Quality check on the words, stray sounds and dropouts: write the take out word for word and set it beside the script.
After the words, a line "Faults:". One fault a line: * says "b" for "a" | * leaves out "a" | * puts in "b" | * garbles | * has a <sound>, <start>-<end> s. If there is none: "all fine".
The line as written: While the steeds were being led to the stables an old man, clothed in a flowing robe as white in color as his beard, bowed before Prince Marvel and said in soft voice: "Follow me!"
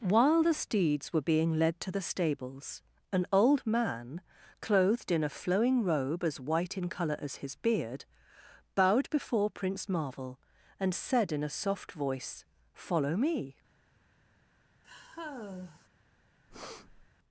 While the steeds were being led to the stables an old man, clothed in a flowing robe as white in color as his beard, bowed before Prince Marvel and said in a soft voice: "Follow me!"
Faults:
* puts in "a"
* has a sigh, 14.8-15.9 s
* has a breath, 16.5-17.1 s